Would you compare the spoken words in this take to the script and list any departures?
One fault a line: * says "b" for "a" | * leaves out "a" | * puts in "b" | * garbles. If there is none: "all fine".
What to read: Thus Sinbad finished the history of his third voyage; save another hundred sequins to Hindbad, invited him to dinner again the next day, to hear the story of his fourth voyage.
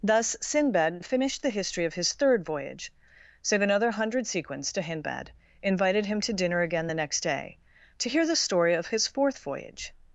all fine